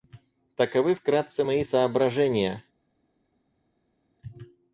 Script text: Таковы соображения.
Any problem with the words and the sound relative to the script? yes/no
yes